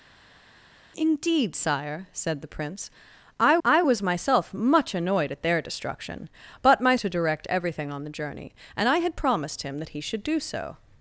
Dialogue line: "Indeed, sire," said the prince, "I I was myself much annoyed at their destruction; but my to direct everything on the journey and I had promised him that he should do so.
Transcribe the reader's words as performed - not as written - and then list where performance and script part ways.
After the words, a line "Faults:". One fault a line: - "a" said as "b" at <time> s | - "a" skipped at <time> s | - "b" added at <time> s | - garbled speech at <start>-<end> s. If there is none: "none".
"Indeed, sire," said the prince, "I I was myself much annoyed at their destruction; but my to direct everything on the journey and I had promised him that he should do so.
Faults:
none